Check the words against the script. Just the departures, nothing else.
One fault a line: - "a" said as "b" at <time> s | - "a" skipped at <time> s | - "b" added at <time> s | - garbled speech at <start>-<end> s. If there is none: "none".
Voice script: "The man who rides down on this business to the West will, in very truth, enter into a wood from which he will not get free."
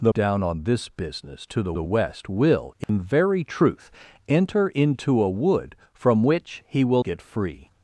- "man who rides" skipped at 0.1 s
- "the" added at 1.7 s
- "not" skipped at 7.0 s